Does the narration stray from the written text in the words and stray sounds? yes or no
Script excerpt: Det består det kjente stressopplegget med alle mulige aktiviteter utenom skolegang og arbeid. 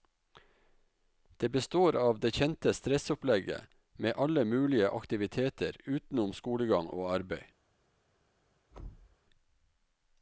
yes